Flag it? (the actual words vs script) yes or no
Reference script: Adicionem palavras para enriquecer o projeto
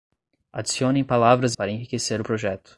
no